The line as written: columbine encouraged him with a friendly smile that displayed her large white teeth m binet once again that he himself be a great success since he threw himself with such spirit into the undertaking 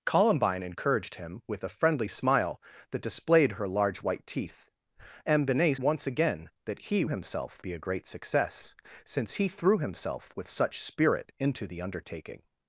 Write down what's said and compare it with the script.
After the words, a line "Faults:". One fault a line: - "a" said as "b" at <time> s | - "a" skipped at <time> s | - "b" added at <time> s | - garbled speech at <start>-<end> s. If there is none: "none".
columbine encouraged him with a friendly smile that displayed her large white teeth m binet once again that he himself be a great success since he threw himself with such spirit into the undertaking
Faults:
none